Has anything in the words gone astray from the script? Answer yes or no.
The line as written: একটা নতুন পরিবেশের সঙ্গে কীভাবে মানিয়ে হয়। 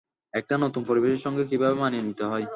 yes